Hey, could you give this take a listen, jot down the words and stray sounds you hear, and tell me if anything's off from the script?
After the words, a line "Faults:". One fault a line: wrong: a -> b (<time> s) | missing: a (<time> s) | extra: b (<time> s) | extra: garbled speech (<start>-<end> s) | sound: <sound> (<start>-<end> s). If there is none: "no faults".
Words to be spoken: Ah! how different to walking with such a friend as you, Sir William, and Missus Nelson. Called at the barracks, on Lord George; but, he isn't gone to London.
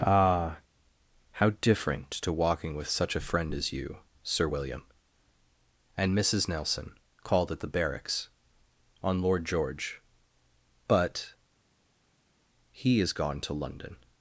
Ah! how different to walking with such a friend as you, Sir William, and Missus Nelson. Called at the barracks, on Lord George; but, he is gone to London.
Faults:
wrong: isn't -> is (13.0 s)